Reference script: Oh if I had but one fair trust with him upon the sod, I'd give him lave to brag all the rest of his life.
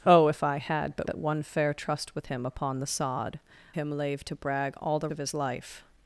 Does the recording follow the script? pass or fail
fail